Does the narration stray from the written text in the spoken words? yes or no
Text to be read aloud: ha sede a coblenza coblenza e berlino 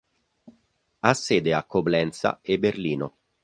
yes